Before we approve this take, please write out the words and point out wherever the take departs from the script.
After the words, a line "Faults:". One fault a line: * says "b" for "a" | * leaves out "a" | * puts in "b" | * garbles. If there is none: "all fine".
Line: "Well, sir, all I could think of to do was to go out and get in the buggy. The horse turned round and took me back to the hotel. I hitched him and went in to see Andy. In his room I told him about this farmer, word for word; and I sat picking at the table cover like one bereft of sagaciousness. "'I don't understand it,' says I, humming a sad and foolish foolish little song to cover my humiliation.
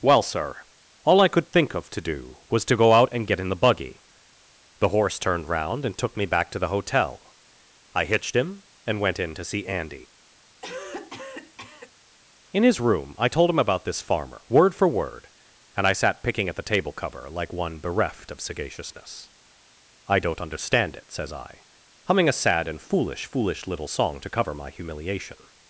"Well, sir, all I could think of to do was to go out and get in the buggy. The horse turned round and took me back to the hotel. I hitched him and went in to see Andy. In his room I told him about this farmer, word for word; and I sat picking at the table cover like one bereft of sagaciousness. "'I don't understand it,' says I, humming a sad and foolish foolish little song to cover my humiliation.
Faults:
all fine